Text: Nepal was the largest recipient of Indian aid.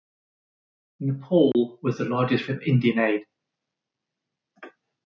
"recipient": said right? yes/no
no